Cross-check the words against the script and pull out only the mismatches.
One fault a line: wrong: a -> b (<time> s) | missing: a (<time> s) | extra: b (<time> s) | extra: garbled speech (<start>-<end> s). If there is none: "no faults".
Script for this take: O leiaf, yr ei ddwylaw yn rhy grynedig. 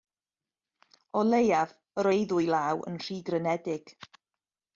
no faults